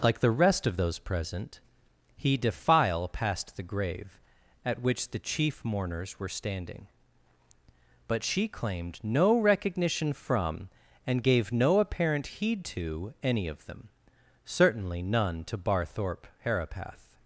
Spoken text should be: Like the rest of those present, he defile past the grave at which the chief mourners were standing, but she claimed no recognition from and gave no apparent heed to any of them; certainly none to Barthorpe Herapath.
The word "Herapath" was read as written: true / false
true